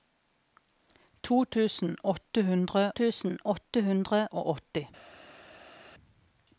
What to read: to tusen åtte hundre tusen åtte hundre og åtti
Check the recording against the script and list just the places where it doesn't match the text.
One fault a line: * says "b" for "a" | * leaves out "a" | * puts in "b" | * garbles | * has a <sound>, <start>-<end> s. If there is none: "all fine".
all fine